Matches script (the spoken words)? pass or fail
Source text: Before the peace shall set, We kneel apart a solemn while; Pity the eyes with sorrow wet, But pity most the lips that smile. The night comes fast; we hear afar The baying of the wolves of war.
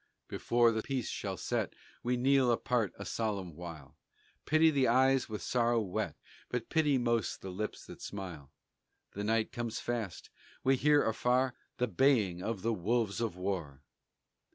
pass